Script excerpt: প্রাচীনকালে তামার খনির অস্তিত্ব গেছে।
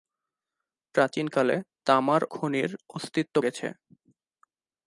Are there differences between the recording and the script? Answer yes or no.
no